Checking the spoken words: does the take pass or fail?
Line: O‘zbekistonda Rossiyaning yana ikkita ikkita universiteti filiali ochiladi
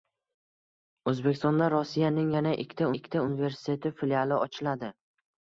pass